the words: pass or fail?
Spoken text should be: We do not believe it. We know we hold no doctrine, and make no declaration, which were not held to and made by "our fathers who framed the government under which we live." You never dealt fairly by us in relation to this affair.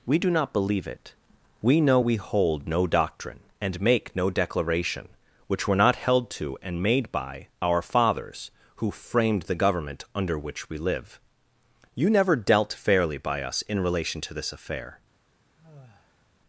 pass